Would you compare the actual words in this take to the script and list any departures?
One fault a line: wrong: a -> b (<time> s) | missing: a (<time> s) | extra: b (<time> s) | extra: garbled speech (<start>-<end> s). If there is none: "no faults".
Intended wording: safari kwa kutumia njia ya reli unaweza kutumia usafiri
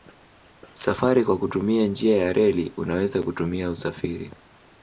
no faults